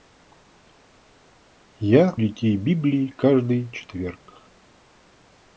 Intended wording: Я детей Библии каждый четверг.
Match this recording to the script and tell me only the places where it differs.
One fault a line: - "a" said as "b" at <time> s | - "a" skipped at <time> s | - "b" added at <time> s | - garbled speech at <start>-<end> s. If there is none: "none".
none